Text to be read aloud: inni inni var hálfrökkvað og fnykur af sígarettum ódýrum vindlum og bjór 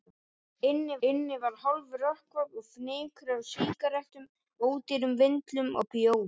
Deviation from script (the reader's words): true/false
false